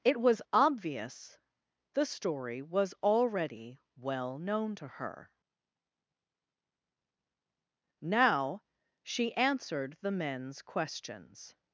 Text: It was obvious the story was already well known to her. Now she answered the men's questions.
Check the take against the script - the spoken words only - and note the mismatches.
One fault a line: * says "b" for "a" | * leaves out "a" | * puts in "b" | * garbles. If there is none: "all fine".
all fine